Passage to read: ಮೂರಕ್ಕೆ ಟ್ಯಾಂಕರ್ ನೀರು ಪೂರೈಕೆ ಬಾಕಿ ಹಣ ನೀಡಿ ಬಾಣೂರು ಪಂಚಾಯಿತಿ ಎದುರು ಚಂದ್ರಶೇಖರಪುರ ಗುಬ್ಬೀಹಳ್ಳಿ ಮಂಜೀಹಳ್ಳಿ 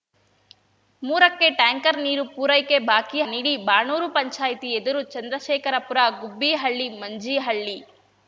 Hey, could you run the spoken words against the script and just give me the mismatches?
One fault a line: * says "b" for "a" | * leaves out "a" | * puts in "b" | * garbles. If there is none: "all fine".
* leaves out "ಹಣ"